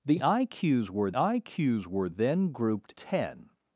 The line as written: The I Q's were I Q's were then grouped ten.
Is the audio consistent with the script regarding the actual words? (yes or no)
yes